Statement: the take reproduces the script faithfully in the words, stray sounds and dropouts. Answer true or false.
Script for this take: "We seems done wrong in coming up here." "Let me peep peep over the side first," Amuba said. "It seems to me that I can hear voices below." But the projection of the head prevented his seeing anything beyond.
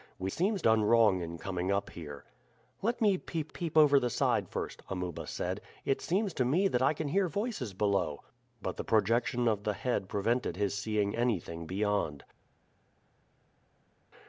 true